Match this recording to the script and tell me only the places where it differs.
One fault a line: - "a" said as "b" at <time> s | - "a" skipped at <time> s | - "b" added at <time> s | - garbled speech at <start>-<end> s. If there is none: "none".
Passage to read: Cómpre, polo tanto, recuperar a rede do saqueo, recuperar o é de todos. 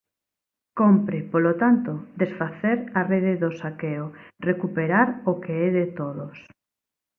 - "recuperar" said as "desfacer" at 2.2 s
- "que" added at 5.4 s